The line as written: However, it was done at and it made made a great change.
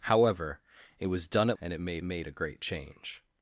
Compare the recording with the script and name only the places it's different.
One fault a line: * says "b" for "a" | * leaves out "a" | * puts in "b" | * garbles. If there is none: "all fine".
all fine